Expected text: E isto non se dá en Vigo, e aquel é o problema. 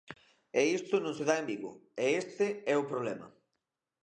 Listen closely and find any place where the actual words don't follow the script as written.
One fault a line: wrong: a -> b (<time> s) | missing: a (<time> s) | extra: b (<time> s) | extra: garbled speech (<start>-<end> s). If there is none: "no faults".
wrong: aquel -> este (2.2 s)